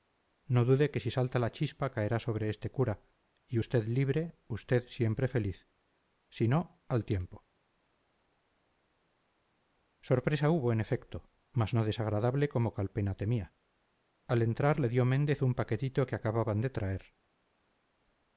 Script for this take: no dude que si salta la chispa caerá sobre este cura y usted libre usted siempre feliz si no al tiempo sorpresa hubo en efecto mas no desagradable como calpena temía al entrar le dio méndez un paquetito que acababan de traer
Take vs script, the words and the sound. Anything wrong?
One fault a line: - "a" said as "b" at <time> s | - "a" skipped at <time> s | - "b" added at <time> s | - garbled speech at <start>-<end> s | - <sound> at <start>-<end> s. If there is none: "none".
none